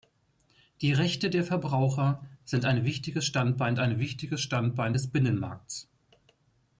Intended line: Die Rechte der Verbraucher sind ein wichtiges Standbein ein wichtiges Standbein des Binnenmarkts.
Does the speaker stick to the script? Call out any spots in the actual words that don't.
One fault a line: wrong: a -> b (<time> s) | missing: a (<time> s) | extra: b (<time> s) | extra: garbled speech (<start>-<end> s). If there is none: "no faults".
no faults